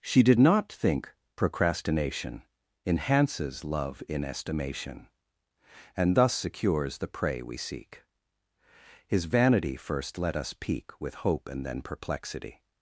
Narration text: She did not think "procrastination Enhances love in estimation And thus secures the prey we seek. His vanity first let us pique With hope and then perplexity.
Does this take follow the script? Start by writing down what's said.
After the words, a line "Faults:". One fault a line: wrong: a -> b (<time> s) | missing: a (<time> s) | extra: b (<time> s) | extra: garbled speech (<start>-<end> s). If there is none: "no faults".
She did not think "procrastination Enhances love in estimation And thus secures the prey we seek. His vanity first let us pique With hope and then perplexity.
Faults:
no faults